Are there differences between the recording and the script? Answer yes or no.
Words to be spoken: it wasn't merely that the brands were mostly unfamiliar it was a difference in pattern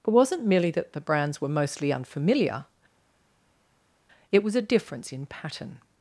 no